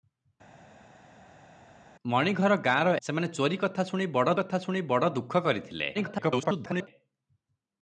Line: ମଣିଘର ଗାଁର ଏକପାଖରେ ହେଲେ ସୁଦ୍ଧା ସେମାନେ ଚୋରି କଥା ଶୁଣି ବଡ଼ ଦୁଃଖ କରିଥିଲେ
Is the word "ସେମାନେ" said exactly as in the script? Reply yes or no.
no